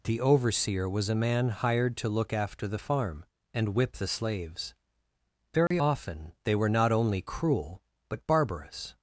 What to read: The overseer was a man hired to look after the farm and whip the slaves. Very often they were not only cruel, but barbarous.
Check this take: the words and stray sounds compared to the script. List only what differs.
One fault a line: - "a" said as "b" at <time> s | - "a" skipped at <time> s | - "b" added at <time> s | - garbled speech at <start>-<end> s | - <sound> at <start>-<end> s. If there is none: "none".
- dropout at 5.7-5.7 s